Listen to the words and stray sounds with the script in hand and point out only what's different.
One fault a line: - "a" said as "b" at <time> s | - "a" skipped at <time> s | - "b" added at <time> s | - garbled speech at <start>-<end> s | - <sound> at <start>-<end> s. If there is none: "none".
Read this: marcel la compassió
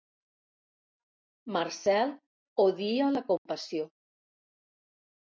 - "odia" added at 2.6 s
- dropout at 3.4-3.5 s